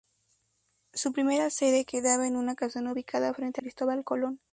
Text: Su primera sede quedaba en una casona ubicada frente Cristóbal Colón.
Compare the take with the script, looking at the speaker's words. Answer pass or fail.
pass